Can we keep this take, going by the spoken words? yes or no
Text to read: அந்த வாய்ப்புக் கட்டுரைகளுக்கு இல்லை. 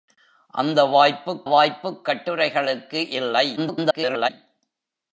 no